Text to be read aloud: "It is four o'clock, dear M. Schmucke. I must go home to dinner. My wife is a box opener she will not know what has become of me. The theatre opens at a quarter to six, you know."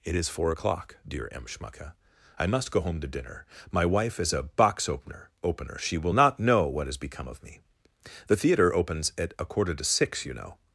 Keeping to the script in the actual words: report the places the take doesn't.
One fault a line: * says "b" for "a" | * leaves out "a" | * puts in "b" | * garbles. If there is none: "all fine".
* puts in "opener"